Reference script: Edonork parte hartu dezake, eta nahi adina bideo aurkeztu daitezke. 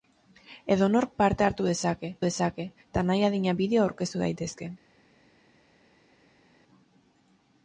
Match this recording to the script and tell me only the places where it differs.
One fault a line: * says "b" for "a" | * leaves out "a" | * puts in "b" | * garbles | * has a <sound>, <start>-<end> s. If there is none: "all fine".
* puts in "dezake"